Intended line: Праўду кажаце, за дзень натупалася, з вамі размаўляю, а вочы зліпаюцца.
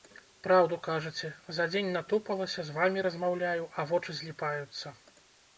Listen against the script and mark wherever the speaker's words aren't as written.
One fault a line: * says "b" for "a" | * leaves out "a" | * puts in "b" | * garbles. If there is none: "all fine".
all fine